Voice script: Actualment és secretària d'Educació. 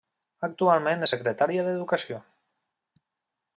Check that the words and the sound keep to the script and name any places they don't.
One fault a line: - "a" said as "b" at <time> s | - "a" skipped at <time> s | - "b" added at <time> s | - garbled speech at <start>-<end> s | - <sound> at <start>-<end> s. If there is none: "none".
none